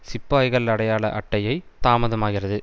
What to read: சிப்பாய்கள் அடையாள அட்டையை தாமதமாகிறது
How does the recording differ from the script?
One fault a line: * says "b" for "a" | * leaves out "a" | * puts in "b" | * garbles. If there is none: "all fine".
all fine